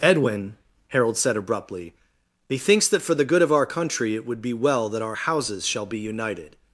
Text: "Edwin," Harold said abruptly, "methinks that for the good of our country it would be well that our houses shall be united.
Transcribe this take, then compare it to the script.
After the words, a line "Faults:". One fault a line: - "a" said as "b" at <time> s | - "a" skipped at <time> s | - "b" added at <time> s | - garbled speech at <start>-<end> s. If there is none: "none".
"Edwin," Harold said abruptly, "methinks that for the good of our country it would be well that our houses shall be united.
Faults:
none